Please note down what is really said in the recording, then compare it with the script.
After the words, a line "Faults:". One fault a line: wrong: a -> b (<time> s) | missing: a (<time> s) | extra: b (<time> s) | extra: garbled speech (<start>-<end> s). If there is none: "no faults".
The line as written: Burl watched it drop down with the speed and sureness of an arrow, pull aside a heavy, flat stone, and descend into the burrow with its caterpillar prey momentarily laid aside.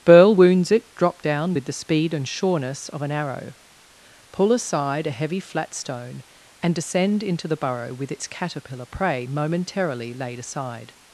Burl wounds it drop down with the speed and sureness of an arrow, pull aside a heavy, flat stone, and descend into the burrow with its caterpillar prey momentarily laid aside.
Faults:
wrong: watched -> wounds (0.3 s)